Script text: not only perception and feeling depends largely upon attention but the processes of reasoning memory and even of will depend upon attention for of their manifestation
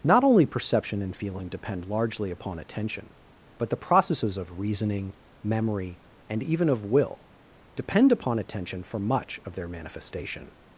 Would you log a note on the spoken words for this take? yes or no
yes